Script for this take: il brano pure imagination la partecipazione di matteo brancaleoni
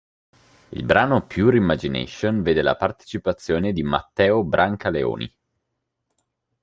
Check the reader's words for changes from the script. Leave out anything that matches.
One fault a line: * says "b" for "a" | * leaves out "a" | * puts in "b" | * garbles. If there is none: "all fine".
* puts in "vede"